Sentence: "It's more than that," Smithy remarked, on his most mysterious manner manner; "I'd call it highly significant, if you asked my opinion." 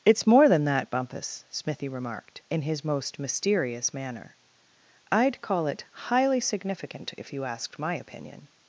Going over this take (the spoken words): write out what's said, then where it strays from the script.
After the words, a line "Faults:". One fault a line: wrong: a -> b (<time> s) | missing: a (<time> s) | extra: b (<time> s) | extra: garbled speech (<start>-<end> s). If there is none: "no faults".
"It's more than that, Bumpus," Smithy remarked, in his most mysterious manner; "I'd call it highly significant, if you asked my opinion."
Faults:
extra: Bumpus (0.9 s)
wrong: on -> in (2.5 s)
missing: manner (4.3 s)